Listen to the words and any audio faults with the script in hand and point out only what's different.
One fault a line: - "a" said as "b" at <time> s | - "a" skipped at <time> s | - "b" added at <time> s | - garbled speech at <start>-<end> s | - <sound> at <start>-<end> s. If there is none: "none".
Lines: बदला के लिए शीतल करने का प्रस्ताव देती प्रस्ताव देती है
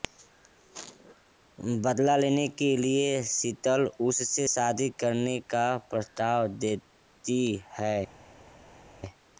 - "लेने" added at 2.2 s
- "उससे शादी" added at 4.1 s
- "प्रस्ताव देती" skipped at 7.4 s